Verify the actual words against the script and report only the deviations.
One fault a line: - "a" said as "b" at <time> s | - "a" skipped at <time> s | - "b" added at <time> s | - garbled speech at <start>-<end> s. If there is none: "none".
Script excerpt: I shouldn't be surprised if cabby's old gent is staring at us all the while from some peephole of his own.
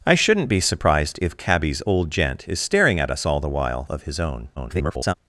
- "from some peephole" skipped at 3.9 s
- garbled speech at 4.6-5.1 s